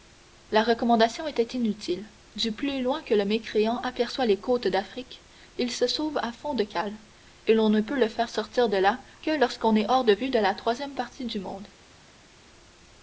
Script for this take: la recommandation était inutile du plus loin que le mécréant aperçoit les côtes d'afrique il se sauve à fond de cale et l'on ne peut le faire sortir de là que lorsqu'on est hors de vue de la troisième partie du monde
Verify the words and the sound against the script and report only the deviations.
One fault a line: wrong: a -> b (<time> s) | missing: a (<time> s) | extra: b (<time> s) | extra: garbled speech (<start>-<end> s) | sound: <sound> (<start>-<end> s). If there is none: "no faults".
no faults